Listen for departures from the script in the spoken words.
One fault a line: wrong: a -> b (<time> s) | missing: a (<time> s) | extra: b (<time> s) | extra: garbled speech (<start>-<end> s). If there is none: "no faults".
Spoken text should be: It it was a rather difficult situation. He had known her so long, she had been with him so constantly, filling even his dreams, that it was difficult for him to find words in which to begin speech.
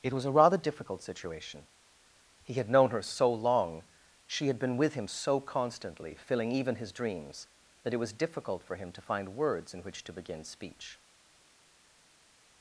missing: it (0.1 s)